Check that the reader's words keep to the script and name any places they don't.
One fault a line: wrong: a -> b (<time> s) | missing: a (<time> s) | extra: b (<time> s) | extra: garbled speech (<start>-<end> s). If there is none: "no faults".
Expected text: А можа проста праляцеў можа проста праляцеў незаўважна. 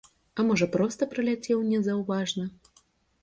missing: можа проста праляцеў (1.6 s)